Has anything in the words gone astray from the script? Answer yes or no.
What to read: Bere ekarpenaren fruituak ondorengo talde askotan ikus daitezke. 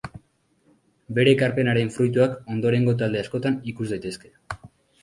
no